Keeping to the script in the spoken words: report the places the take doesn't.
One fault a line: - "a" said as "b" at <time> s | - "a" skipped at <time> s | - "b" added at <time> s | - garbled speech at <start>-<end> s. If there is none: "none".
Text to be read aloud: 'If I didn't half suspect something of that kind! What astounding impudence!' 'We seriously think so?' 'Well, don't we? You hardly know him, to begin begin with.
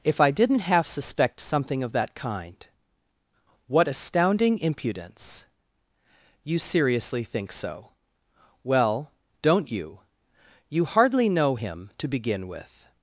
- "We" said as "You" at 6.4 s
- "we" said as "you" at 9.7 s
- "begin" skipped at 12.5 s